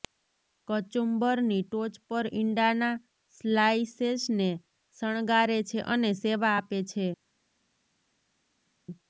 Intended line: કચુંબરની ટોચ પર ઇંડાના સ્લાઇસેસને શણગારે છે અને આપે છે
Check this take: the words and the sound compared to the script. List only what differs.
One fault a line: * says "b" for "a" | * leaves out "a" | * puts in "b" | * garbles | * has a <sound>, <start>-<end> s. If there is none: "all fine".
* puts in "સેવા"